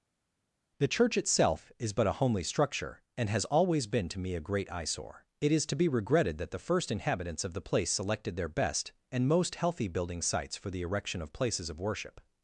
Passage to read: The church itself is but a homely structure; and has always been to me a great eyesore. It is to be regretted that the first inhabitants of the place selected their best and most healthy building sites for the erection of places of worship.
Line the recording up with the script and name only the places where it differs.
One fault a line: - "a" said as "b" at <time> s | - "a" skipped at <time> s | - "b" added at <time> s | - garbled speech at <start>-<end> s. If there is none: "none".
none